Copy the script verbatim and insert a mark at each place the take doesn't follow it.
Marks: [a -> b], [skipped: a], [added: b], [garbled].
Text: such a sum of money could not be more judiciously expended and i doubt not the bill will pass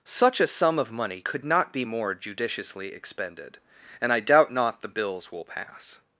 such a sum of money could not be more judiciously expended and i doubt not the [bill -> bills] will pass